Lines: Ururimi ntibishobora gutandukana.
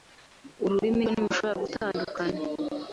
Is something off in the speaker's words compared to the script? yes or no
no